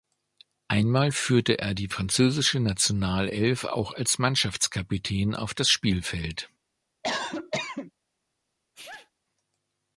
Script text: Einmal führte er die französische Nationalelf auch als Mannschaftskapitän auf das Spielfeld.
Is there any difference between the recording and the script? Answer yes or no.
no